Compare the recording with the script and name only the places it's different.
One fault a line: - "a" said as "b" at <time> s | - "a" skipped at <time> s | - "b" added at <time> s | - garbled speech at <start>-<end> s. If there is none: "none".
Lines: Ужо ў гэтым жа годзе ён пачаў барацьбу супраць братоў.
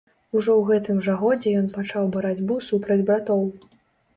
none